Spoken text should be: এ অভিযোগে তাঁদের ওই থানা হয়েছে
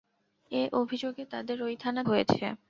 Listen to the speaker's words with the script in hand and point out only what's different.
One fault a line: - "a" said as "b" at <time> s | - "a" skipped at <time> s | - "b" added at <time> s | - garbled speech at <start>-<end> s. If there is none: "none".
none